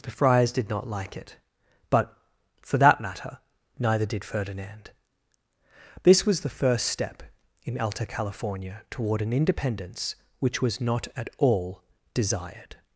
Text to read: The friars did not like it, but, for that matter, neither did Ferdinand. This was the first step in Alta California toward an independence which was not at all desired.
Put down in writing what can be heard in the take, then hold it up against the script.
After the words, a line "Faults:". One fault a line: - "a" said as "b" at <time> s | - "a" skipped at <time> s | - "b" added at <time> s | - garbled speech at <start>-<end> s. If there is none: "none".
The friars did not like it, but, for that matter, neither did Ferdinand. This was the first step in Alta California toward an independence which was not at all desired.
Faults:
none